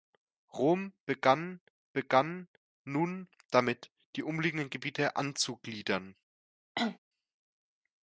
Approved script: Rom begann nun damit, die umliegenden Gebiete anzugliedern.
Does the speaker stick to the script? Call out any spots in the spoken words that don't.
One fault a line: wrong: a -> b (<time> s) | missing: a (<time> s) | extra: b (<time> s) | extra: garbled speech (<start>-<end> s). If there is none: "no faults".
extra: begann (1.9 s)